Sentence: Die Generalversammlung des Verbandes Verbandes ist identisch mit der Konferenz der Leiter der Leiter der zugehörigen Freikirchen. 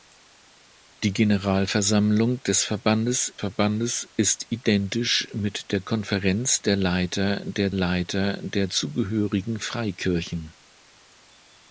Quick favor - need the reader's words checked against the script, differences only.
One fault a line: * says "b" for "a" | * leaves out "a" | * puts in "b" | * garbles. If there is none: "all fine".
all fine